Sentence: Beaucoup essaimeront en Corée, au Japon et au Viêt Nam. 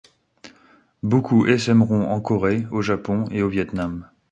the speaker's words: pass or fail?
pass